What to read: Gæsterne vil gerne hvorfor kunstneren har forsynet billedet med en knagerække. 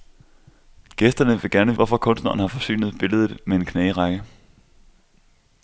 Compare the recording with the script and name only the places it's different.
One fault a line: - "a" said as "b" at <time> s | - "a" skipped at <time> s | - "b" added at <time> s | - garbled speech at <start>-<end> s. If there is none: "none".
none